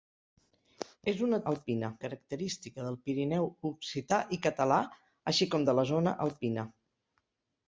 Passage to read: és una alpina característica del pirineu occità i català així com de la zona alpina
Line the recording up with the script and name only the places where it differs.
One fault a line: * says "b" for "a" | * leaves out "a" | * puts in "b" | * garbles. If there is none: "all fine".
all fine